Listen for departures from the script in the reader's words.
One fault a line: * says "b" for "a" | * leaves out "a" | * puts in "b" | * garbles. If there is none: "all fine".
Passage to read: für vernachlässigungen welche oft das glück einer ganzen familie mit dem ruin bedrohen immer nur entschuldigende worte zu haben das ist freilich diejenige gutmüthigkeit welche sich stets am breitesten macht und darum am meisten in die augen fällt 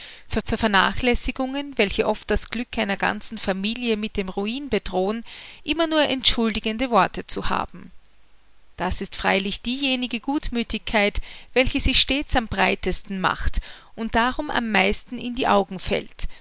* puts in "für"